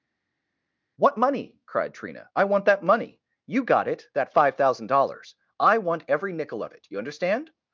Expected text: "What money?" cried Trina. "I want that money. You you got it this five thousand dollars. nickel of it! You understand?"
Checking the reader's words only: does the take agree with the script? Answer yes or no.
no